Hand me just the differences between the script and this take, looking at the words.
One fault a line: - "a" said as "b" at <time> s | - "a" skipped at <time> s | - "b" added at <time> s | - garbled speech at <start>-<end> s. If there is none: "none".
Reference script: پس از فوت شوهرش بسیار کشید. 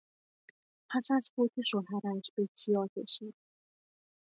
none